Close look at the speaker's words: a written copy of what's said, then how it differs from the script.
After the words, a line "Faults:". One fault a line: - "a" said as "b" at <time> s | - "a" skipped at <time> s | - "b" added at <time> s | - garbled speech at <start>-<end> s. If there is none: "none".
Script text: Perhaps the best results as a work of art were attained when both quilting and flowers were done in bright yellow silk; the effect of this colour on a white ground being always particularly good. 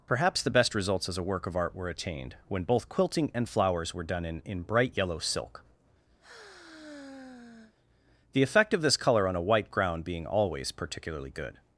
Perhaps the best results as a work of art were attained when both quilting and flowers were done in in bright yellow silk; the effect of this colour on a white ground being always particularly good.
Faults:
- "in" added at 4.4 s